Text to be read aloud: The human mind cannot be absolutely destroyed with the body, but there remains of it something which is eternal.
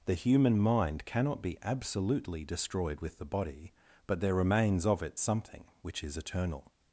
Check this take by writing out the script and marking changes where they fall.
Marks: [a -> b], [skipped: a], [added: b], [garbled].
The human mind cannot be absolutely destroyed with the body, but there remains of it something which is eternal.